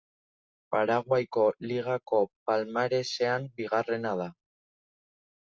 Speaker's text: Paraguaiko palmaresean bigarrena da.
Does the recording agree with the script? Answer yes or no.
no